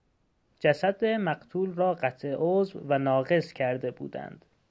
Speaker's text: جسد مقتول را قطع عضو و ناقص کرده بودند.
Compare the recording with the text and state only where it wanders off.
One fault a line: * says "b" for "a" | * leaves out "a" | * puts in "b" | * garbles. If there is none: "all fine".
all fine